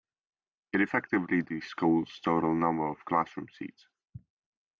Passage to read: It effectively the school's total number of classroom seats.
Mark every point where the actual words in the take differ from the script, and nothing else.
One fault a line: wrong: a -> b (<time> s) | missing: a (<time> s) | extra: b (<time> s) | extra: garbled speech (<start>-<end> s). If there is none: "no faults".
no faults